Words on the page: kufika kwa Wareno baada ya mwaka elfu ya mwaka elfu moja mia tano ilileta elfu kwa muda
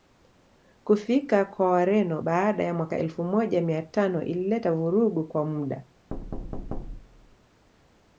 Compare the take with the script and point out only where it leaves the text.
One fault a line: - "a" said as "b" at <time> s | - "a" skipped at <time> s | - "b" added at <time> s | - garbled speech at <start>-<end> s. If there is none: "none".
- "ya mwaka elfu" skipped at 3.2 s
- "elfu" said as "vurugu" at 4.7 s